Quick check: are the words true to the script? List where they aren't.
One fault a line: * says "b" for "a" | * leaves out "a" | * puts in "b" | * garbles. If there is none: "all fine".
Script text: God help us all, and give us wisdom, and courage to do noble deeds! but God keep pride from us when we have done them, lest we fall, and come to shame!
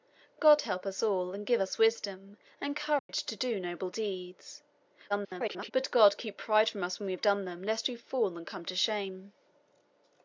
* garbles